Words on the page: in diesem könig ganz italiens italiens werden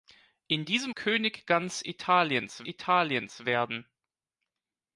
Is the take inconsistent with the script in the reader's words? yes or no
no